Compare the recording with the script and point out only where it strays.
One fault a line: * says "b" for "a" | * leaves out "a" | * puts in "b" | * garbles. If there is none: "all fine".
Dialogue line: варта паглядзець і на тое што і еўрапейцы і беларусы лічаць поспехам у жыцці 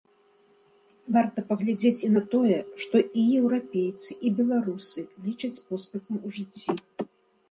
all fine